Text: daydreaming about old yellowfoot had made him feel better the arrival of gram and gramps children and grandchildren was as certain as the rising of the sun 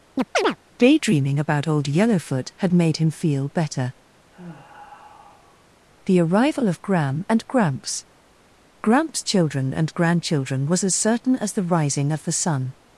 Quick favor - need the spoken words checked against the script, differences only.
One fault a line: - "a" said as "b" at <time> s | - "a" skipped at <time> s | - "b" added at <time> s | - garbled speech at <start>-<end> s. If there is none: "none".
- "gramps" added at 8.8 s